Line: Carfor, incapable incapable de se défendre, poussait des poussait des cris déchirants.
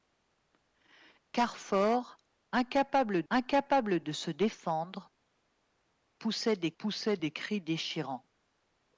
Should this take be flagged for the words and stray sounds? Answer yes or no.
no